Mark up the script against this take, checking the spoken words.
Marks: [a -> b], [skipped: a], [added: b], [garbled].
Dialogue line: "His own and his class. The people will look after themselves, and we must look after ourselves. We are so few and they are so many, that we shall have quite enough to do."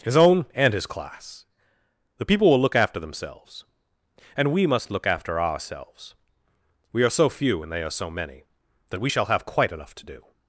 "His own and his class. The people will look after themselves, and we must look after ourselves. We are so few and they are so many, that we shall have quite enough to do."